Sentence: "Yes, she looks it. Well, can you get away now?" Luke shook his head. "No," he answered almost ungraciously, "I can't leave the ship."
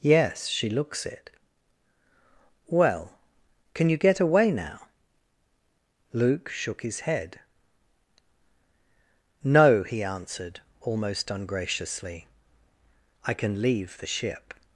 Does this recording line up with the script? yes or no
no